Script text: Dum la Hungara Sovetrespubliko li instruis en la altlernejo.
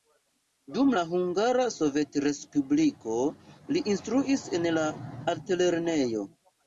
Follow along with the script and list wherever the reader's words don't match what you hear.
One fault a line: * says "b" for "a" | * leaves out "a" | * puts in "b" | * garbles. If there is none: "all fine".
all fine